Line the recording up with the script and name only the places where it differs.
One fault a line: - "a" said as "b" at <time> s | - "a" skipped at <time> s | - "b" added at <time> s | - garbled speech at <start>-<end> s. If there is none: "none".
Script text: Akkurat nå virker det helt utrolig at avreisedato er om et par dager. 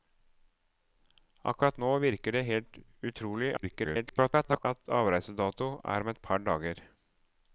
- garbled speech at 3.6-4.6 s